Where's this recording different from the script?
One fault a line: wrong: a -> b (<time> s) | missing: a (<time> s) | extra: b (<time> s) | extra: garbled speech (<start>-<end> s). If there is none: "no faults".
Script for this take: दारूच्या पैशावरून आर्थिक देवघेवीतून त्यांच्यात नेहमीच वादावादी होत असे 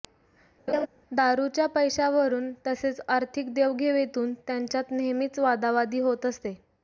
extra: तसेच (2.7 s)